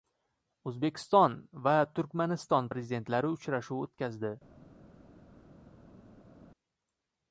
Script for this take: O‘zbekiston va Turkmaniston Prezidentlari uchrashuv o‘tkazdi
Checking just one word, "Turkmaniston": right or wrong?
right